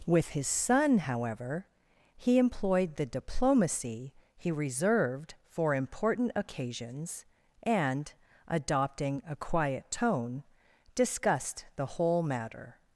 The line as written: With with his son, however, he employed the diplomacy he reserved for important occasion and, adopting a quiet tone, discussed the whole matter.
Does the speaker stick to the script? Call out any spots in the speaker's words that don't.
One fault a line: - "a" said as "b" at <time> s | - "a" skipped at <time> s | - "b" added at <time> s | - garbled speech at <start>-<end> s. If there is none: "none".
- "with" skipped at 0.3 s
- "occasion" said as "occasions" at 6.3 s